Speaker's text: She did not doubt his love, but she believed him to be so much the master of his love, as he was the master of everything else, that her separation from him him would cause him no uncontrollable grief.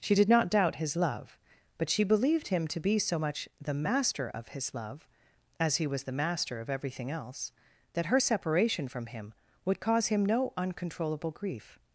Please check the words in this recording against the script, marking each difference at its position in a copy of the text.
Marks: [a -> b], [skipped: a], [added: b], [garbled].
She did not doubt his love, but she believed him to be so much the master of his love, as he was the master of everything else, that her separation from him [skipped: him] would cause him no uncontrollable grief.